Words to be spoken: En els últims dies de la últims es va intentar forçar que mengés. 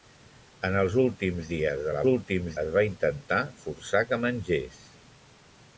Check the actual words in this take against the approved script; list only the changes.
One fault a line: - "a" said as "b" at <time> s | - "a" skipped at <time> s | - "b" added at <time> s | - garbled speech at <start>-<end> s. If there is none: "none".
none